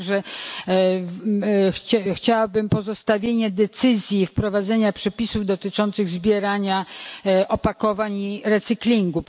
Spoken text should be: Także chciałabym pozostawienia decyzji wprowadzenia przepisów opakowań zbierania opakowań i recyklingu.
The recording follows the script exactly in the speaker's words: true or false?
false